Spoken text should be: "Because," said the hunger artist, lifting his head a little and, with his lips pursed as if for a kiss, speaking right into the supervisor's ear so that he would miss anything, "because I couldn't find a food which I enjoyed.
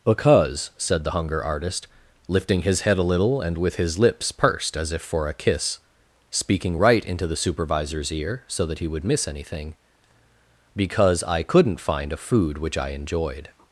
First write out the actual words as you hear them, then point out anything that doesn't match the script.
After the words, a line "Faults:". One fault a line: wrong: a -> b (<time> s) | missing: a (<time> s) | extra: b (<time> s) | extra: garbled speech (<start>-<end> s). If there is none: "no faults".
"Because," said the hunger artist, lifting his head a little and, with his lips pursed as if for a kiss, speaking right into the supervisor's ear so that he would miss anything, "because I couldn't find a food which I enjoyed.
Faults:
no faults